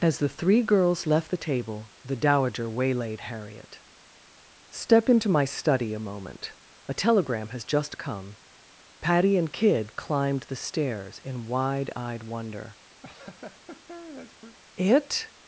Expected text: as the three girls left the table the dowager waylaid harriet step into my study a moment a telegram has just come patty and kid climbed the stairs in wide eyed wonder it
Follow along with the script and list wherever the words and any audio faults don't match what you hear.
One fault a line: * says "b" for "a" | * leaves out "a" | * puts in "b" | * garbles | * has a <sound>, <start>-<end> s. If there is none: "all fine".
* has a laugh, 13.0-14.6 s